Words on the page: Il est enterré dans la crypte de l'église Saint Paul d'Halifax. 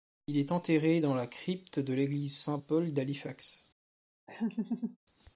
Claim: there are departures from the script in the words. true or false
false